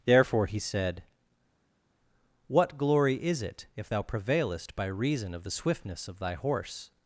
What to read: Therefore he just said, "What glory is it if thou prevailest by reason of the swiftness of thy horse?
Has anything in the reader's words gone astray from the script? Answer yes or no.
yes